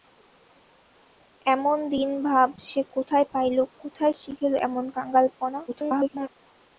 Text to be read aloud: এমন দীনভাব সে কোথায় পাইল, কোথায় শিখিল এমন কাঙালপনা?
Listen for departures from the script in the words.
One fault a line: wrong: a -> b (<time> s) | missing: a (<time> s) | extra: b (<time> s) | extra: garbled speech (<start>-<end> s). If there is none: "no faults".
extra: garbled speech (5.7-6.3 s)